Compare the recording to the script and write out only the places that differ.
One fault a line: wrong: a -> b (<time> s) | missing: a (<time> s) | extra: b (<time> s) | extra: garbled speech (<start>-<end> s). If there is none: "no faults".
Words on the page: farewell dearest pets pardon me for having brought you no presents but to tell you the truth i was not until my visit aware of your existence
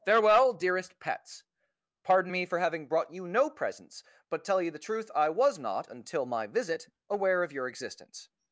missing: to (4.4 s)